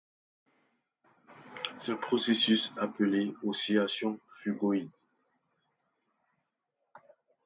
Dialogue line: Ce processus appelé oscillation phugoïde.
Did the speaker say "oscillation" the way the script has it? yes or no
yes